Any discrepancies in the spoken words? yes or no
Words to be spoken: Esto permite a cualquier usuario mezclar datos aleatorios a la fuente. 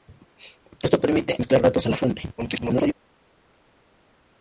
yes